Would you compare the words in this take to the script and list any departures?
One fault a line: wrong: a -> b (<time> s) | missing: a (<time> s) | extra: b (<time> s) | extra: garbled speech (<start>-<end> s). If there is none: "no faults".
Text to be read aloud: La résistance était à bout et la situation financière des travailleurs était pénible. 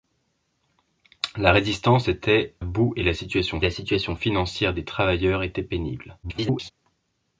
missing: à (2.5 s)
extra: la situation (3.6 s)
extra: garbled speech (6.2-6.7 s)